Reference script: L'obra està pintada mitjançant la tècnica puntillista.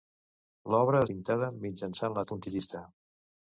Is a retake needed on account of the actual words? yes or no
yes